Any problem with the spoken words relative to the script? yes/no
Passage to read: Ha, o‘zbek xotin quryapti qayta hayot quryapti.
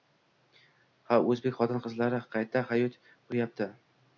yes